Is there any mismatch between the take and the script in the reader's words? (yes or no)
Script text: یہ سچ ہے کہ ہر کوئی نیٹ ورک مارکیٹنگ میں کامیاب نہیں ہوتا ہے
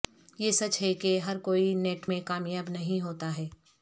yes